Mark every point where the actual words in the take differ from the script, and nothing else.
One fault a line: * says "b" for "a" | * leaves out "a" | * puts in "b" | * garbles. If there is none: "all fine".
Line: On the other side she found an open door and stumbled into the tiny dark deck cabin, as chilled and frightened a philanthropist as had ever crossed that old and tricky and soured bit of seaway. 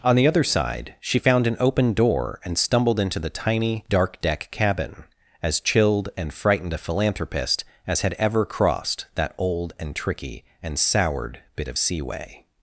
all fine